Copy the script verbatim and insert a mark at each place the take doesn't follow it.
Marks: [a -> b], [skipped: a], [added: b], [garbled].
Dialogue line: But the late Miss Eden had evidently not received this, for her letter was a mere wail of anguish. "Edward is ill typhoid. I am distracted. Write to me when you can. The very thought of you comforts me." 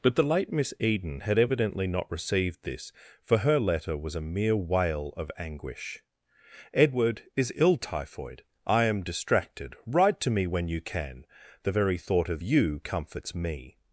But the late Miss Eden had evidently not received this, for her letter was a mere wail of anguish. "Edward is ill typhoid. I am distracted. Write to me when you can. The very thought of you comforts me."